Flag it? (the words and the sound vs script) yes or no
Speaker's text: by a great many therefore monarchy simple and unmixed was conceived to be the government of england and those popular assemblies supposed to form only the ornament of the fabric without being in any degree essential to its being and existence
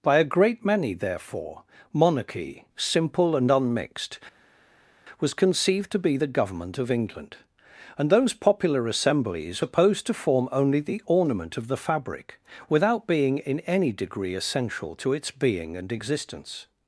no